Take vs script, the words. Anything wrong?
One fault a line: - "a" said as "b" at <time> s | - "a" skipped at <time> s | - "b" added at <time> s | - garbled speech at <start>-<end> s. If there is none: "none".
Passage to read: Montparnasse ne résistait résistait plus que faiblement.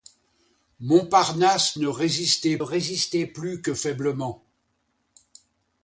none